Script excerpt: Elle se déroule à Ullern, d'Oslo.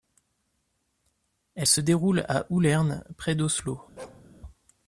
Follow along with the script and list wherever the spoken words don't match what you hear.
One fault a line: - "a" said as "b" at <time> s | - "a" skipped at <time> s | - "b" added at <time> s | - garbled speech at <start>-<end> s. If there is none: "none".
- "près" added at 3.2 s